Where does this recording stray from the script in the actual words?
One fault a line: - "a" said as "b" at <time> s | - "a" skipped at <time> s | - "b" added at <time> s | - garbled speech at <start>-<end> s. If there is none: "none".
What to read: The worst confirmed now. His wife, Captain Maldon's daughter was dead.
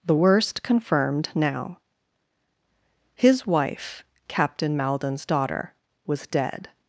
none